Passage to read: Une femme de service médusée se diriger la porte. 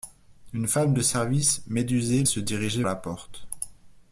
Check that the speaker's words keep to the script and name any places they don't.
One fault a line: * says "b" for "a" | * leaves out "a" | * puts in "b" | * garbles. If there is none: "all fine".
all fine